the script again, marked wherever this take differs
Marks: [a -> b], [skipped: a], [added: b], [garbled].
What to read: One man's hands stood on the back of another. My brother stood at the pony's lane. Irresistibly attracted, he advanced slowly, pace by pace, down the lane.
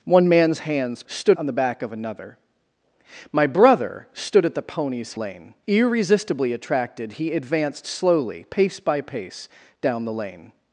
One man's hands stood on the back of another. My brother stood at the pony's lane. Irresistibly attracted, he advanced slowly, pace by pace, down the lane.